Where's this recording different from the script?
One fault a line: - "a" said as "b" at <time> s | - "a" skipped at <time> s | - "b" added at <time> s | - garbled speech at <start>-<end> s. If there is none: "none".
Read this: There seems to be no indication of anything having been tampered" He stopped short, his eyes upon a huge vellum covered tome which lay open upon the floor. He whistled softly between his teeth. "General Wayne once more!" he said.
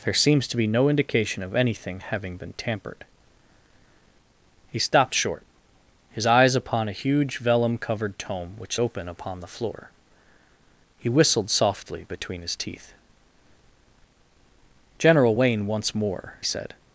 - "lay" skipped at 8.8 s
- "he" skipped at 16.3 s